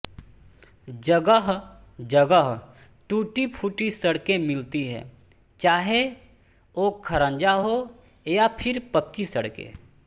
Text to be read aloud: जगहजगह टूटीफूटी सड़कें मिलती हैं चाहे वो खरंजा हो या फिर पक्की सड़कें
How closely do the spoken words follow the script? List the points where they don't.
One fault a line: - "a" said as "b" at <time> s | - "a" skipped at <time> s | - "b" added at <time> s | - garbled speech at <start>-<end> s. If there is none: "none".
none